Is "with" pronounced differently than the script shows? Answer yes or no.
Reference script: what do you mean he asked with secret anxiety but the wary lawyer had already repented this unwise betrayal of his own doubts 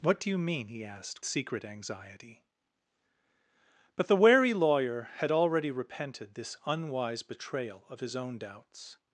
yes